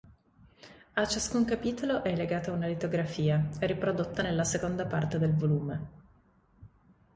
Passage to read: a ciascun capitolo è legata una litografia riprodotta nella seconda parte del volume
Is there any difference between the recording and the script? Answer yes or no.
no